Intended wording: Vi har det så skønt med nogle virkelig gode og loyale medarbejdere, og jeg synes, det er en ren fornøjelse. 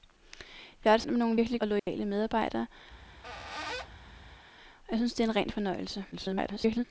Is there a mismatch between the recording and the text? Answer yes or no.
yes